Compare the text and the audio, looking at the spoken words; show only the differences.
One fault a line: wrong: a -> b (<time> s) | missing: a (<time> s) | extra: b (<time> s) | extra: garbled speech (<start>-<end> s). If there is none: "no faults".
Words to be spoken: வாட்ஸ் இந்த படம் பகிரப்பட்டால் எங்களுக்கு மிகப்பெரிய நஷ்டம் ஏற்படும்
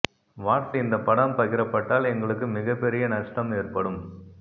no faults